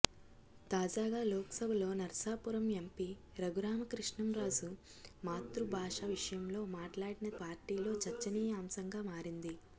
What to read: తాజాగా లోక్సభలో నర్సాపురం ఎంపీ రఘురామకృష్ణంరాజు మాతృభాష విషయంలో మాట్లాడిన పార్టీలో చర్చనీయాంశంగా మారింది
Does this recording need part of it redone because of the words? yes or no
no